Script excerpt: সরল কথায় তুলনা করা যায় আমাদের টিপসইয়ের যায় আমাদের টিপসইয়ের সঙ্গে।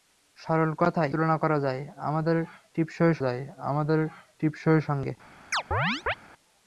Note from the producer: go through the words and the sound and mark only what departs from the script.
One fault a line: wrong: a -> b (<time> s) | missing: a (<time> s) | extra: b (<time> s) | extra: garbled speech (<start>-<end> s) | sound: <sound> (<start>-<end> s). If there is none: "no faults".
sound: chirp (5.5-6.1 s)